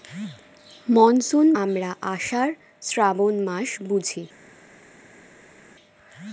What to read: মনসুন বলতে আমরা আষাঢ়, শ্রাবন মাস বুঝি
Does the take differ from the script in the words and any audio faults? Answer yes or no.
yes